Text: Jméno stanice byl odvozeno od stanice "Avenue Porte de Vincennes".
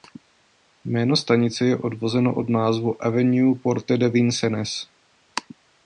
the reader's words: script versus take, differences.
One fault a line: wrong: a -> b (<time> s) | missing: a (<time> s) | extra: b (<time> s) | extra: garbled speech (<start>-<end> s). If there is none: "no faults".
wrong: byl -> je (1.6 s)
wrong: stanice -> názvu (2.5 s)